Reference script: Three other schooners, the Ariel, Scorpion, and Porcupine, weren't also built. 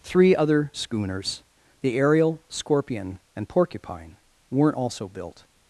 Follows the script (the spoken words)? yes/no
yes